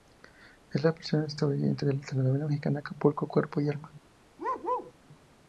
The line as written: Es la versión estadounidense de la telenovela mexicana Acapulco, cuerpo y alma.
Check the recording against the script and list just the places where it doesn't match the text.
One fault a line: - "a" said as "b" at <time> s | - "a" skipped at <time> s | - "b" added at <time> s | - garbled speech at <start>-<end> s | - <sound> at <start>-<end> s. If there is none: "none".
- bark at 4.4-4.9 s